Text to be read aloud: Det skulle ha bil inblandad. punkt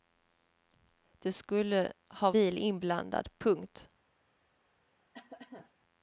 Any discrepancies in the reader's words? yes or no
no